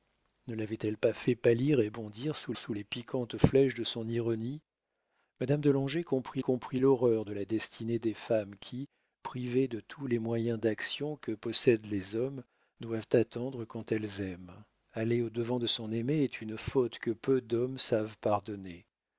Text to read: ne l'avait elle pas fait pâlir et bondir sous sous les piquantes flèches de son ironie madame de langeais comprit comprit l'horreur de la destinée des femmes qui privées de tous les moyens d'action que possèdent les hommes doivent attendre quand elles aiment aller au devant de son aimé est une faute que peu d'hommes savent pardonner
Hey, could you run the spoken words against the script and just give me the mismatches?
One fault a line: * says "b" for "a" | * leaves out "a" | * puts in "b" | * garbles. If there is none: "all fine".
all fine